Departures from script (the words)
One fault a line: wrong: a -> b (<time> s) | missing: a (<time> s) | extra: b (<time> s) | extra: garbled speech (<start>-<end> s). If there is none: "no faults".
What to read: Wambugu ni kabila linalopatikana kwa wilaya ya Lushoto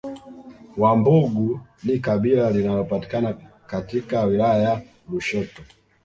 wrong: kwa -> katika (3.7 s)